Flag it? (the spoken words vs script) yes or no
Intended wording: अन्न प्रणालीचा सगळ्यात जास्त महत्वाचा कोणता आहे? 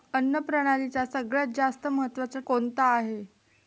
no